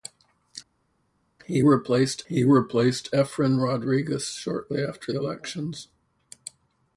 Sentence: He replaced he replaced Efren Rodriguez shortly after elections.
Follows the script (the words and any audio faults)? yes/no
yes